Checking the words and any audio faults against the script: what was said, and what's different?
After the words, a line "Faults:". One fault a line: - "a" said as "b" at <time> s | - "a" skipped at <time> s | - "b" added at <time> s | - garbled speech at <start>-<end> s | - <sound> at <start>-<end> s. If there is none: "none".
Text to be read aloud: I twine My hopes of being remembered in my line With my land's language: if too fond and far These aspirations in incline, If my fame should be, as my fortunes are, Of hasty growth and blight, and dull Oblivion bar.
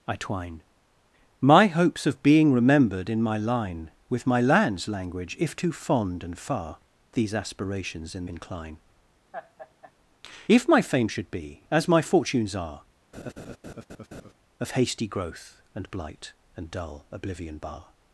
I twine My hopes of being remembered in my line With my land's language: if too fond and far These aspirations in incline, If my fame should be, as my fortunes are, Of hasty growth and blight, and dull Oblivion bar.
Faults:
- laugh at 9.3-9.9 s
- laugh at 13.1-14.3 s